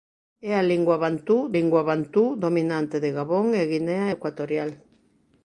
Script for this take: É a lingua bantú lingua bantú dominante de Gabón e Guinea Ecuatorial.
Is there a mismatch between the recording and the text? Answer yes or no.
no